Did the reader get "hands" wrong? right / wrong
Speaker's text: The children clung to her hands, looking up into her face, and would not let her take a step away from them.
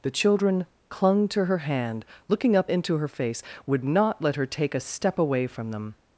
wrong